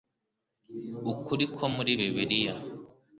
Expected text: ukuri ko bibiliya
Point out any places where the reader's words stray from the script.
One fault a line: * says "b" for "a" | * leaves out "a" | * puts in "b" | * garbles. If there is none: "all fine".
* puts in "muri"